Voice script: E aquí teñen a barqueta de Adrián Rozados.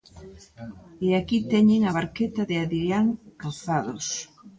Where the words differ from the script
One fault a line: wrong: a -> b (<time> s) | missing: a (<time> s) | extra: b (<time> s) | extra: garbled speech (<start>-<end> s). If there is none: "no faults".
no faults